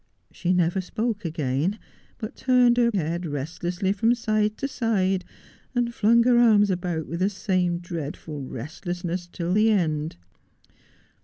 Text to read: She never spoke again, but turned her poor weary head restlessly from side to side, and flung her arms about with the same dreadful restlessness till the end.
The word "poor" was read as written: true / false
false